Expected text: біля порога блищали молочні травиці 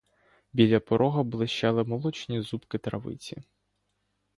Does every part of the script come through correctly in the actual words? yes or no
no